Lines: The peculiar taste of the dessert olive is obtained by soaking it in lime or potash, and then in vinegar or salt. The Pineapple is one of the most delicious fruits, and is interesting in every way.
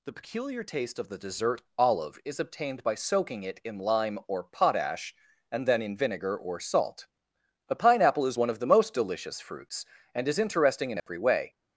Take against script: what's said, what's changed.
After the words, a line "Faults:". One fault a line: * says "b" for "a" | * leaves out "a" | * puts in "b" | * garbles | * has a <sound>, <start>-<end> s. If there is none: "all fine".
The peculiar taste of the dessert olive is obtained by soaking it in lime or potash, and then in vinegar or salt. A Pineapple is one of the most delicious fruits, and is interesting in every way.
Faults:
* says "A" for "The"
* has a dropout, 11.0-11.1 s